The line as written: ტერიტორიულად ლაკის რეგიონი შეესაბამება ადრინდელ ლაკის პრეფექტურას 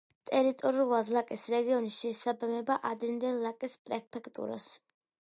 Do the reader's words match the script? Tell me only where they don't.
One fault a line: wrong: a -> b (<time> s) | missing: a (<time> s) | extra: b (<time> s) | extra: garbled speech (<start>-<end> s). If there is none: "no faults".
no faults